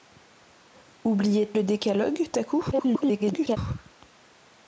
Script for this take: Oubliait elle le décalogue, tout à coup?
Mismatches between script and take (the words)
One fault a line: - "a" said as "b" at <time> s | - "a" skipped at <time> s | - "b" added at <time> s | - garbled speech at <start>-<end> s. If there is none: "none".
- "elle" skipped at 1.5 s
- "tout" skipped at 2.3 s
- garbled speech at 2.7-3.6 s